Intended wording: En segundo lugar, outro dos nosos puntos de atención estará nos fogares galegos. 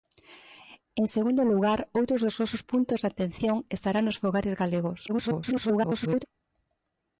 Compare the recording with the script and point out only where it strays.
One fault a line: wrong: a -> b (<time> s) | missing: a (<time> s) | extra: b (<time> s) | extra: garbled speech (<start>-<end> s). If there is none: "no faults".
extra: garbled speech (5.1-6.3 s)